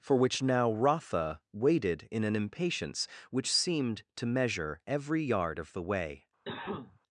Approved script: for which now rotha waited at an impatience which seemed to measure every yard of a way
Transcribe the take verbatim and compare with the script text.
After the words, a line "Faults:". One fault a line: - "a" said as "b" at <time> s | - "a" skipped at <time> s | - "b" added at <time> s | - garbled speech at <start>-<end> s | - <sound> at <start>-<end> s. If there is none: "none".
for which now rotha waited in an impatience which seemed to measure every yard of the way
Faults:
- "at" said as "in" at 2.1 s
- "a" said as "the" at 5.7 s
- cough at 6.4-7.0 s